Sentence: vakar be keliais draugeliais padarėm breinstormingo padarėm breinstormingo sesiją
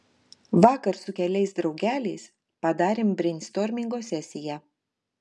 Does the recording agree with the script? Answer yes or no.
no